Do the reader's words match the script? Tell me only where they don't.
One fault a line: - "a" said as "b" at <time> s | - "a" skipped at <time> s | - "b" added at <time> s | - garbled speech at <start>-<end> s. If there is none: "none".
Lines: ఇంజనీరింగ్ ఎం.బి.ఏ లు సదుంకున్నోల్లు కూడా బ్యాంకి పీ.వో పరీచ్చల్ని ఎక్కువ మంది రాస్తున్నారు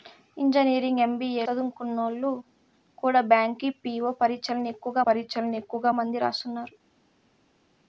- "లు" skipped at 1.4 s
- "పరీచ్చల్ని ఎక్కువ" added at 5.1 s